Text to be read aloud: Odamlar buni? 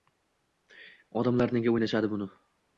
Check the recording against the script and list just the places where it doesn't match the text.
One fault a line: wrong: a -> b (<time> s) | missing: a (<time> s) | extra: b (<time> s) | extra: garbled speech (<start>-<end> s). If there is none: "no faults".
extra: nega o‘ynashadi (1.6 s)